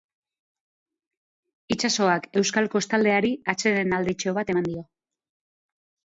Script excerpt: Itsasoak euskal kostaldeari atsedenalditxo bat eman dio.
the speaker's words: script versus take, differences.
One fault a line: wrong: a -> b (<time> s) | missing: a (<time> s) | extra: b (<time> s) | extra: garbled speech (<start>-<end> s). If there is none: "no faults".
no faults